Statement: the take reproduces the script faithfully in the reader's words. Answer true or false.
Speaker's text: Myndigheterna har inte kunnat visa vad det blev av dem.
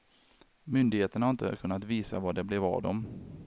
true